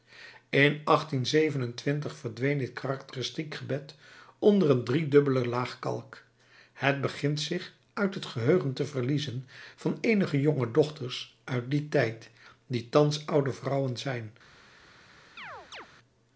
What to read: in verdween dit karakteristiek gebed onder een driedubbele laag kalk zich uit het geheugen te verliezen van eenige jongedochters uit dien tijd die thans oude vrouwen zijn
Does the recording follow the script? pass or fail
fail